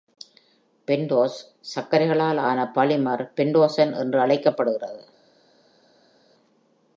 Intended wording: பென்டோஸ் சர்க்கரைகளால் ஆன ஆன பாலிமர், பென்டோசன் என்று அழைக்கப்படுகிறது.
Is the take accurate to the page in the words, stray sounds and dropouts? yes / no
no